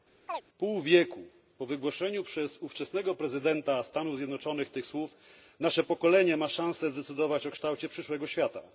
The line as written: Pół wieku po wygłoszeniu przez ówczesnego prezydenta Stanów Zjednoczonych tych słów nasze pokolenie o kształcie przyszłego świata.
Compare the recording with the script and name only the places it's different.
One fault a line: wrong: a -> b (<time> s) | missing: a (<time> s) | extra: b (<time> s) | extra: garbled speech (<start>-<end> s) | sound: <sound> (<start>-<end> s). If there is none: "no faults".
sound: chirp (0.3-0.4 s)
extra: ma szansę zdecydować (6.4 s)